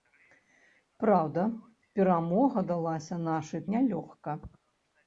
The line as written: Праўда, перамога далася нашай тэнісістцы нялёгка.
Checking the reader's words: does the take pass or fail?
fail